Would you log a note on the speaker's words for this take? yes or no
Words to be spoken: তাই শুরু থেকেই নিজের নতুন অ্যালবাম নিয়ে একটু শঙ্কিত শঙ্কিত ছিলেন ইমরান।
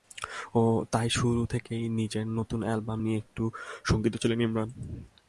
yes